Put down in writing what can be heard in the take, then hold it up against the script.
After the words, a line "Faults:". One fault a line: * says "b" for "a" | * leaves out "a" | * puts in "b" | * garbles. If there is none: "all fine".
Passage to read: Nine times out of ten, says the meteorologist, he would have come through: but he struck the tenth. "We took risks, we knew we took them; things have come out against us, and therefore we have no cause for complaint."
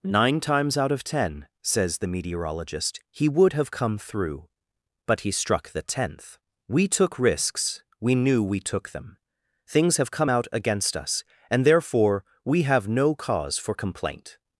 Nine times out of ten, says the meteorologist, he would have come through: but he struck the tenth. "We took risks, we knew we took them; things have come out against us, and therefore we have no cause for complaint."
Faults:
all fine